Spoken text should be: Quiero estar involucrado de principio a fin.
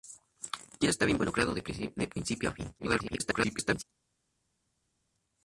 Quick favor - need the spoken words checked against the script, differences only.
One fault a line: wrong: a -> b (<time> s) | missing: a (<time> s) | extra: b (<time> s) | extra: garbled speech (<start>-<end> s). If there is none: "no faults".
extra: garbled speech (2.8-3.8 s)